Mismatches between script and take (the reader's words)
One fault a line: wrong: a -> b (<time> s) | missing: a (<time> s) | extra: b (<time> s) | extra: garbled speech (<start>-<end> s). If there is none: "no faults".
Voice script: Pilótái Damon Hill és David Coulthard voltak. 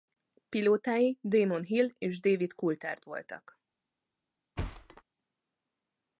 no faults